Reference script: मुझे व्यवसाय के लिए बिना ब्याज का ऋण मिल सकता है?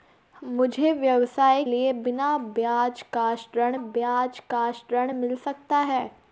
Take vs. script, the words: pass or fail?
fail